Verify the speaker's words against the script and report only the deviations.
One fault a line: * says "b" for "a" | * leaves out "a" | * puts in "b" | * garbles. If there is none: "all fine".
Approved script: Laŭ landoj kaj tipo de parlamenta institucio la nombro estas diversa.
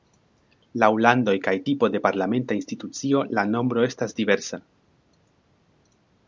all fine